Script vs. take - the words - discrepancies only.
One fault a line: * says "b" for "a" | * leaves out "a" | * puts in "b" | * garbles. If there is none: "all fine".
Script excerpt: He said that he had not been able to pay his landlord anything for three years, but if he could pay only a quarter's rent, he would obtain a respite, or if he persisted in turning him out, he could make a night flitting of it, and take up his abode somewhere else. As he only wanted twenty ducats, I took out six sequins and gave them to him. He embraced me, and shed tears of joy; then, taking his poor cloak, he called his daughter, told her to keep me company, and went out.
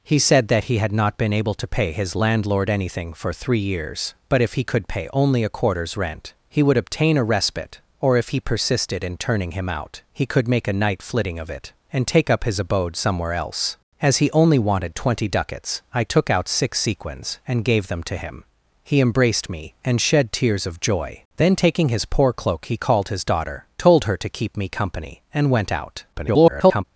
* garbles